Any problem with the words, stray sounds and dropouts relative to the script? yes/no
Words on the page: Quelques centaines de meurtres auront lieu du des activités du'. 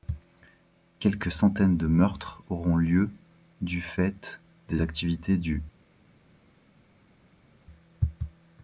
yes